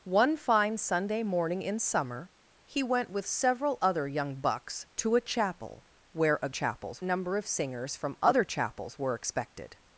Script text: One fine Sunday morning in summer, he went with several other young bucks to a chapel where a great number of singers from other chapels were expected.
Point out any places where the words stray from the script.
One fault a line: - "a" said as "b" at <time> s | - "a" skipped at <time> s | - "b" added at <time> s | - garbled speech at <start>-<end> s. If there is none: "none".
- "great" said as "chapels" at 6.5 s